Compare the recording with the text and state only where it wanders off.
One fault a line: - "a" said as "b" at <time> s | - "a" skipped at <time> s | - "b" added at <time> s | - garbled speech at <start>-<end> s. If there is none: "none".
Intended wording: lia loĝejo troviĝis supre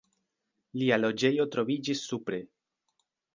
none